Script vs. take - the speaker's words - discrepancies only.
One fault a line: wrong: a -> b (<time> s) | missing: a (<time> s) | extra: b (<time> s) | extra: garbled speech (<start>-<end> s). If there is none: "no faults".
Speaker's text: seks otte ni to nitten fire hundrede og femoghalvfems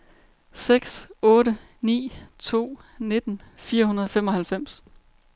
no faults